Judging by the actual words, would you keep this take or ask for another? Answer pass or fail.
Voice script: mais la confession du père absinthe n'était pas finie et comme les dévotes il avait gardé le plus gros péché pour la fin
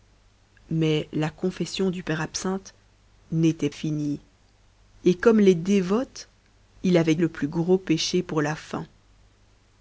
fail